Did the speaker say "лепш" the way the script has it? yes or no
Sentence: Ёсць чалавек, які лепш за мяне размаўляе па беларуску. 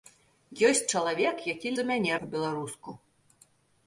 no